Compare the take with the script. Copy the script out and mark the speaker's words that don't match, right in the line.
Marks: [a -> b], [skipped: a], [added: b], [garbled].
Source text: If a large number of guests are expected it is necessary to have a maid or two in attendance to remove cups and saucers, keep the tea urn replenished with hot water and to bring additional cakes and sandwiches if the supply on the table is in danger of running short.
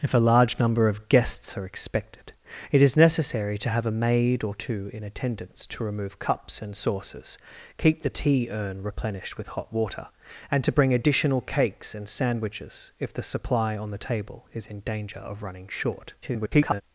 If a large number of guests are expected it is necessary to have a maid or two in attendance to remove cups and saucers, keep the tea urn replenished with hot water and to bring additional cakes and sandwiches if the supply on the table is in danger of running short. [garbled]